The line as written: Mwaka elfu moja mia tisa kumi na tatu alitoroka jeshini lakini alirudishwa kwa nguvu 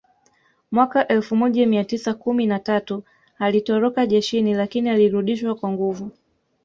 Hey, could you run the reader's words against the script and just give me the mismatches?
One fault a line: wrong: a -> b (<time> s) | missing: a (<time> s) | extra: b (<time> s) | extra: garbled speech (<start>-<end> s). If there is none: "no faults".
no faults